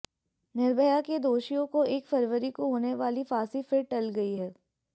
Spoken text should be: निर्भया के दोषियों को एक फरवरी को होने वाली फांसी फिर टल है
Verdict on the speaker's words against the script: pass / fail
fail